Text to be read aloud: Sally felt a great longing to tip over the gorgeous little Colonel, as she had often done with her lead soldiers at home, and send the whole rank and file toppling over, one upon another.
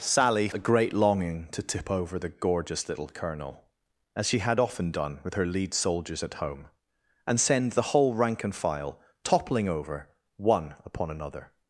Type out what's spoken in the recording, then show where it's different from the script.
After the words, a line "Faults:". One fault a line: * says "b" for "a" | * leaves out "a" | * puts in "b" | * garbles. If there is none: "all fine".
Sally a great longing to tip over the gorgeous little Colonel, as she had often done with her lead soldiers at home, and send the whole rank and file toppling over, one upon another.
Faults:
* leaves out "felt"